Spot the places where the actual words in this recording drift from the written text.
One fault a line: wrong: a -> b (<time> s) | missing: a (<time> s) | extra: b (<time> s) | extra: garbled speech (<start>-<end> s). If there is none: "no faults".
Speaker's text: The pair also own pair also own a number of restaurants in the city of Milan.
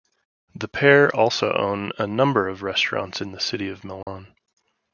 missing: pair also own (1.9 s)